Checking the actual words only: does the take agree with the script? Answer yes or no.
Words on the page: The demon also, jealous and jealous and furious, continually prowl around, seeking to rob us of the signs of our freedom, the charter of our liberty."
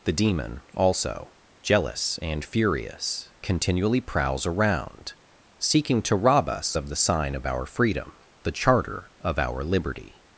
no